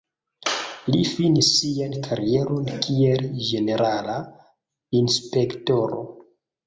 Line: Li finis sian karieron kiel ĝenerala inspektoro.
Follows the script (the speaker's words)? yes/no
yes